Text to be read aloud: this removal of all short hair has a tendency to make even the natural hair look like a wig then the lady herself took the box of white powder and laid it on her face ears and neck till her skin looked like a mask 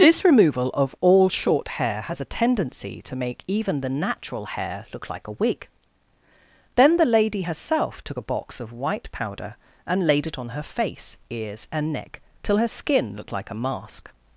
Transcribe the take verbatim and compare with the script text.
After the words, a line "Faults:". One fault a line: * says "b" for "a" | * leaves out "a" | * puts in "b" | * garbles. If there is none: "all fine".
this removal of all short hair has a tendency to make even the natural hair look like a wig then the lady herself took a box of white powder and laid it on her face ears and neck till her skin looked like a mask
Faults:
* says "a" for "the"